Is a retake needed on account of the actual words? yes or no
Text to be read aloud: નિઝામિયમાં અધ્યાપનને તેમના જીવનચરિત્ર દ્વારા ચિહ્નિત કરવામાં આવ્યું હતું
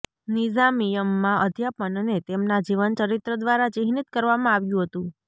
no